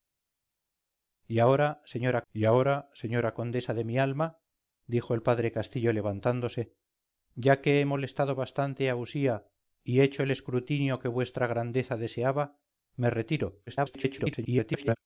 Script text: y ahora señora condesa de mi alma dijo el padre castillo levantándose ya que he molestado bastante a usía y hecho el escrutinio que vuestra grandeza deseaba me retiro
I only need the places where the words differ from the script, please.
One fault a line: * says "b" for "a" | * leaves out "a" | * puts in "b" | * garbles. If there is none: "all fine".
* puts in "y ahora señora"
* garbles